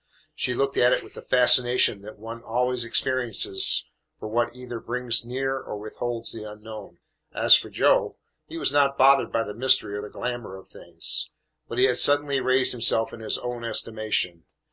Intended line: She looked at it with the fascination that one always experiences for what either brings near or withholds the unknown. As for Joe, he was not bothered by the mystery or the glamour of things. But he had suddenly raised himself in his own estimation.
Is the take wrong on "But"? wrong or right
right